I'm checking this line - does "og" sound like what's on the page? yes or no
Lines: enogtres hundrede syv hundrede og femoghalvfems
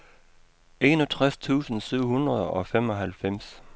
yes